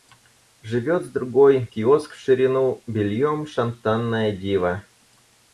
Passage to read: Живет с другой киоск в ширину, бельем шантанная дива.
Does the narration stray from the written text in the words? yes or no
no